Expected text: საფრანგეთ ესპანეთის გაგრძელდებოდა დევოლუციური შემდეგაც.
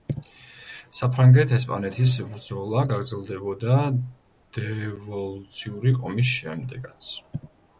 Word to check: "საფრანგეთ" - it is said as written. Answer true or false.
true